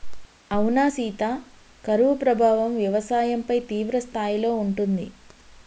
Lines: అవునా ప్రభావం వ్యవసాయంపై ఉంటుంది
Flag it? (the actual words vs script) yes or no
yes